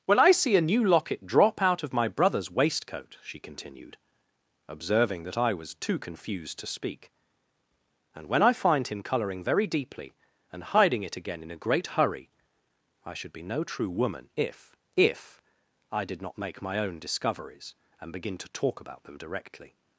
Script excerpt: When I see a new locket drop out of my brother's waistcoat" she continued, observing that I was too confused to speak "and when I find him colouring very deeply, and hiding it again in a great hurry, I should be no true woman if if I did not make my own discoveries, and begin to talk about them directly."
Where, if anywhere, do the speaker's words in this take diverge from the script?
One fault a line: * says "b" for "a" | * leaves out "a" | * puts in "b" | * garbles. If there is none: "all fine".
all fine